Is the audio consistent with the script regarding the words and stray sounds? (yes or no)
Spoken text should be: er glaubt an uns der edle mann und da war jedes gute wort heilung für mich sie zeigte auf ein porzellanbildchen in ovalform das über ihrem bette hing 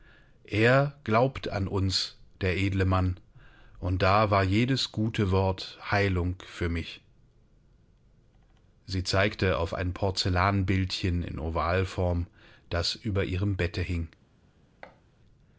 no